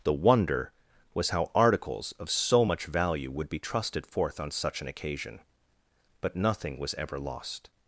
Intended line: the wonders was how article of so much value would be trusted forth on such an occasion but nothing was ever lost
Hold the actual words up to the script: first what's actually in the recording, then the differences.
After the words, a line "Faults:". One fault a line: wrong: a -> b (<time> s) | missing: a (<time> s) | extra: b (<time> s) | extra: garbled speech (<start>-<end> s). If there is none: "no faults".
the wonder was how articles of so much value would be trusted forth on such an occasion but nothing was ever lost
Faults:
wrong: wonders -> wonder (0.1 s)
wrong: article -> articles (1.5 s)